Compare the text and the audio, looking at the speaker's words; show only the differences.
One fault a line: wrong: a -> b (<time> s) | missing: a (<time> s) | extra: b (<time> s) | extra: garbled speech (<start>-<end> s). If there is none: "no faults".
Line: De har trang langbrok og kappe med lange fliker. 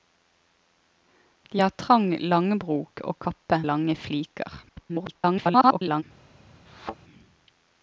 missing: med (3.6 s)
extra: garbled speech (4.7-6.0 s)